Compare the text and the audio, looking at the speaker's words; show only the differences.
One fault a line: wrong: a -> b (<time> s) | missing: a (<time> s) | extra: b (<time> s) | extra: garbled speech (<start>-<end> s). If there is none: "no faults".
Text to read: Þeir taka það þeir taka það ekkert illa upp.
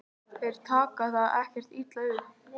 missing: þeir taka það (1.4 s)